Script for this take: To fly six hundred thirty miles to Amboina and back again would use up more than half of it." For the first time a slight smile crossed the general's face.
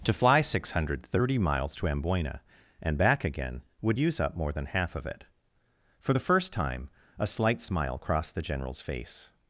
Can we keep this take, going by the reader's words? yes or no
yes